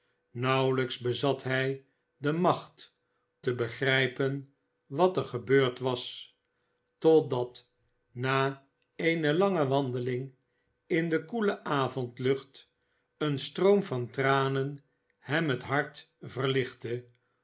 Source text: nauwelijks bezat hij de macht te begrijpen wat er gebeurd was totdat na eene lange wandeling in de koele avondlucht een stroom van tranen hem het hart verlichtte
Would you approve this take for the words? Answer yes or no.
yes